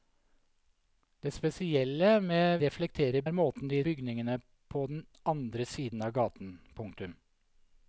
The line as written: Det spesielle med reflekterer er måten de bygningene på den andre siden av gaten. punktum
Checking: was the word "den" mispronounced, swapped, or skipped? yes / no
no